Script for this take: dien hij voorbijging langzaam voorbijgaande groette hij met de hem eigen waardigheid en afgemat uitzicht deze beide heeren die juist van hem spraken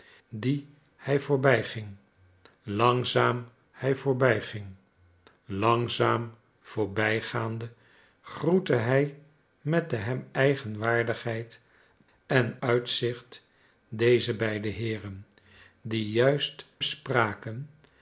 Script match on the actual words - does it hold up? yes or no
no